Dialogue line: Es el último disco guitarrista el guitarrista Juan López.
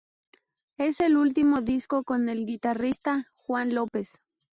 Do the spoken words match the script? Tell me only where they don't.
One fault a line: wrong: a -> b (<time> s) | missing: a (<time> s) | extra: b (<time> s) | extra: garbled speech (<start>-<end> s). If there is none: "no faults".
wrong: guitarrista -> con (2.0 s)